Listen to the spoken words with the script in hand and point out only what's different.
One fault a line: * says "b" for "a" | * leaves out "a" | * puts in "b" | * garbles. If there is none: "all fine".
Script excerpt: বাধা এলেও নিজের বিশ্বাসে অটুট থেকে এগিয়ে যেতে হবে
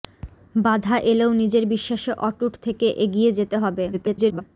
* garbles